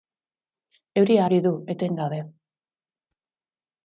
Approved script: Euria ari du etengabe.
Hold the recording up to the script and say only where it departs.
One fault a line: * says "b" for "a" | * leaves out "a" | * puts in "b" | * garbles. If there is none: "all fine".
all fine